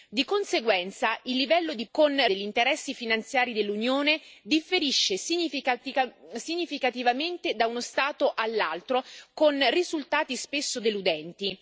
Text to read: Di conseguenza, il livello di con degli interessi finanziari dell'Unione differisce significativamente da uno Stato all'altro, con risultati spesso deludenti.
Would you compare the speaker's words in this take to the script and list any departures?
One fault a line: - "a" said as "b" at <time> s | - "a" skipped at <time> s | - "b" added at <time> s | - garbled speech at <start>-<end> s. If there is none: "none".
none